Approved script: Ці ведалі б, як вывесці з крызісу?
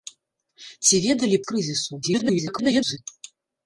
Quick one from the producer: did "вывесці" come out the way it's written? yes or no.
no